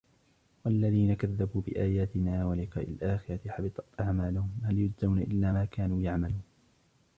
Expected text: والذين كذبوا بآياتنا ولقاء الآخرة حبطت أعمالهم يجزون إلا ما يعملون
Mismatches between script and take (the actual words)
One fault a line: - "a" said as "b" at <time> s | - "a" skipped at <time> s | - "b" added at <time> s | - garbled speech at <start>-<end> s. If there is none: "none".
- "هل" added at 4.6 s
- "كانوا" added at 5.6 s